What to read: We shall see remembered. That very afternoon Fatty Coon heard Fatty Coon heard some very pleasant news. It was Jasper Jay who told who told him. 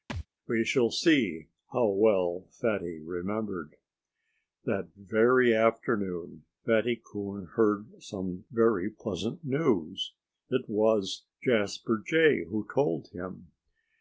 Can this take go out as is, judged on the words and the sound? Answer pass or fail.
fail